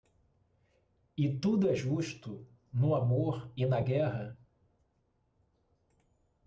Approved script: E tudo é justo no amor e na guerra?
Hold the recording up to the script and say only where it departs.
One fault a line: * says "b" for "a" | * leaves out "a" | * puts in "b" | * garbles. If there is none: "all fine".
all fine